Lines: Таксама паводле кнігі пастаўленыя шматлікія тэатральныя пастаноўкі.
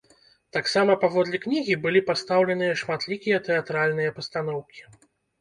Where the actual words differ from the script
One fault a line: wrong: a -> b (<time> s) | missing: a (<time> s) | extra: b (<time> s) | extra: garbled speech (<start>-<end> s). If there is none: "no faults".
extra: былі (1.8 s)